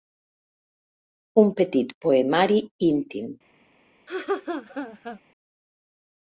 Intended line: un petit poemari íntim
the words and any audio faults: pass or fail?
fail